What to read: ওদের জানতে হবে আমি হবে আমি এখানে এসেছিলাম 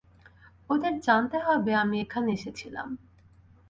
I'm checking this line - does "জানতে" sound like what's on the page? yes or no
yes